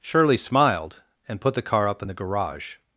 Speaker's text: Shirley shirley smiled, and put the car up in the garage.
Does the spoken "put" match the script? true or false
true